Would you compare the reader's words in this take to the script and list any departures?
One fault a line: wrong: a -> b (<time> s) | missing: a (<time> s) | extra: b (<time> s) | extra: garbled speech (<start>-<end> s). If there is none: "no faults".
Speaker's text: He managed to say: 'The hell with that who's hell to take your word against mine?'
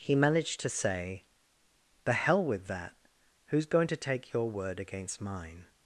wrong: hell -> going (3.7 s)